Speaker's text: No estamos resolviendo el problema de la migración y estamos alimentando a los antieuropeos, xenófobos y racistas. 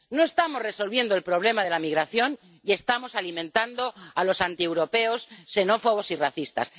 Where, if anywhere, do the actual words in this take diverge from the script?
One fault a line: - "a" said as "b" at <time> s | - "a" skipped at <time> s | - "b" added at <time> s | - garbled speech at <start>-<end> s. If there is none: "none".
none